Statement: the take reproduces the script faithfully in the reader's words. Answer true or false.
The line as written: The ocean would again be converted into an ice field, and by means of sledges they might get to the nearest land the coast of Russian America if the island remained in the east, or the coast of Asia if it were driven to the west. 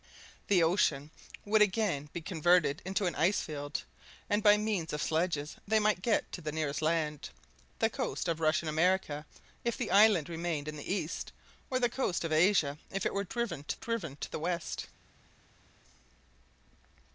false